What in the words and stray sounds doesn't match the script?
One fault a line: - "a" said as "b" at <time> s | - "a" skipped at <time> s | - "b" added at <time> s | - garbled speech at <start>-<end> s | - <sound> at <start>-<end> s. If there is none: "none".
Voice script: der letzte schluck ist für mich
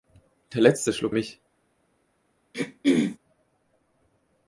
- "ist für" skipped at 1.1 s
- throat clearing at 2.5-3.2 s